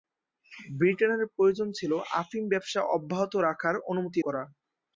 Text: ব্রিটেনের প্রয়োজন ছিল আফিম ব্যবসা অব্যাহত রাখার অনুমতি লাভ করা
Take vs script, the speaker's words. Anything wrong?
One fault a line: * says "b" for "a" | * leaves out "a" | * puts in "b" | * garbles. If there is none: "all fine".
* leaves out "লাভ"